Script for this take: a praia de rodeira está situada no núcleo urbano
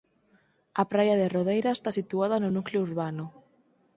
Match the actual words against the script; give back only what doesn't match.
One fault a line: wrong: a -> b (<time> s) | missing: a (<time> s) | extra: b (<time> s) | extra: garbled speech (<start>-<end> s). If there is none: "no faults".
no faults